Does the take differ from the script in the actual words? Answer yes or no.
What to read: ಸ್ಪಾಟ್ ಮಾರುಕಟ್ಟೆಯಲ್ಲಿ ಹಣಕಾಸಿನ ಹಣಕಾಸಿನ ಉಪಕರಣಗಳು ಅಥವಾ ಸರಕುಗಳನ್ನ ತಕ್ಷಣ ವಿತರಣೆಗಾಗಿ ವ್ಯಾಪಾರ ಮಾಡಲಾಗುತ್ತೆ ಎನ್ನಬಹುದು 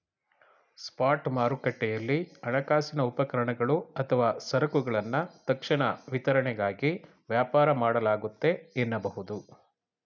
yes